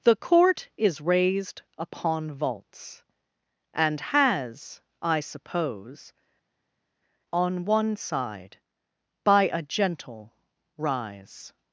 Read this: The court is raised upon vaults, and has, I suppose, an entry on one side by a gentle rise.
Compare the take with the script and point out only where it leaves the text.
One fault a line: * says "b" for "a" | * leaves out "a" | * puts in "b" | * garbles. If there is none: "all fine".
* leaves out "an entry"